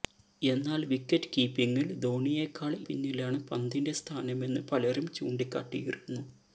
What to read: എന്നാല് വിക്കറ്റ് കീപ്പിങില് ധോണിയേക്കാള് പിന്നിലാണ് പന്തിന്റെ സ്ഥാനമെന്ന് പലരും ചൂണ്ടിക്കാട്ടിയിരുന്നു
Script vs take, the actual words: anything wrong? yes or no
no